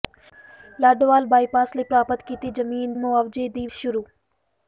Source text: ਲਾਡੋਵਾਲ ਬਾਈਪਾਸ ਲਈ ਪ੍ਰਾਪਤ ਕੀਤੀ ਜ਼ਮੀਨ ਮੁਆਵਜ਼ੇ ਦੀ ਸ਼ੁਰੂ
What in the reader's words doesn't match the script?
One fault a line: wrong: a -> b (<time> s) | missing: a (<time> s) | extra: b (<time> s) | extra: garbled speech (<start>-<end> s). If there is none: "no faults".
no faults